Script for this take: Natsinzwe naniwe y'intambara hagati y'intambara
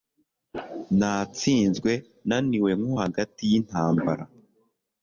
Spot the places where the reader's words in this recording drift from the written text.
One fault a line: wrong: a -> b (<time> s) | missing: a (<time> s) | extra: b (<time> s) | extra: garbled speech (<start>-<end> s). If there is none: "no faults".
wrong: y'intambara -> nko (2.8 s)